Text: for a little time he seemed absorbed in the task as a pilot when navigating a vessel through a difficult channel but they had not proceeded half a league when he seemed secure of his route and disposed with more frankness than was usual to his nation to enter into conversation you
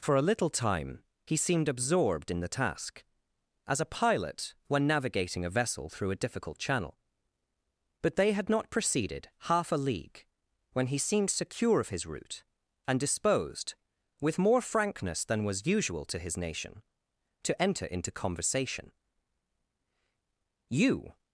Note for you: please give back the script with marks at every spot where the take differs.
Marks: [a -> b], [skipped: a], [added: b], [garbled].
for a little time he seemed absorbed in the task as a pilot when navigating a vessel through a difficult channel but they had not proceeded half a league when he seemed secure of his route and disposed with more frankness than was usual to his nation to enter into conversation you